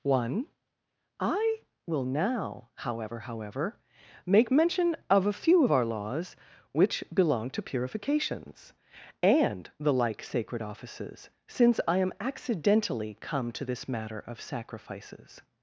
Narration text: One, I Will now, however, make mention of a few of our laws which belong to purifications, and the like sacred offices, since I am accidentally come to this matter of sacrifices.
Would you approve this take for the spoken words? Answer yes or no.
no